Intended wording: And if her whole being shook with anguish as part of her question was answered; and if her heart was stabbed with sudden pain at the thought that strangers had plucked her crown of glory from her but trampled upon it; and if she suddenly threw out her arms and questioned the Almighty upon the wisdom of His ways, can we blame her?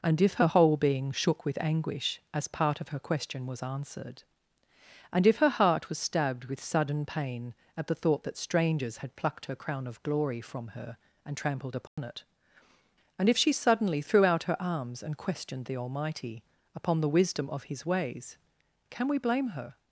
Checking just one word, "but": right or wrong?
wrong